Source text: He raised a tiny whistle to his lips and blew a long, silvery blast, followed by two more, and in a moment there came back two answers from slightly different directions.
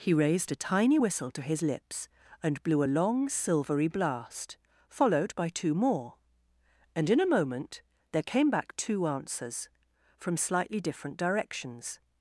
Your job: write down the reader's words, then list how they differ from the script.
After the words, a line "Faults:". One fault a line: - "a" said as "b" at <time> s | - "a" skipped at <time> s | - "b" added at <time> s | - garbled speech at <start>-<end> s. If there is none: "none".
He raised a tiny whistle to his lips and blew a long, silvery blast, followed by two more, and in a moment there came back two answers from slightly different directions.
Faults:
none